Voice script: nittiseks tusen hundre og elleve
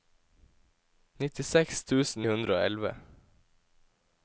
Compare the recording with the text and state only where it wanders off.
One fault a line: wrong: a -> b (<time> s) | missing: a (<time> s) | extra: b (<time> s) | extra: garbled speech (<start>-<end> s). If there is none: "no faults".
no faults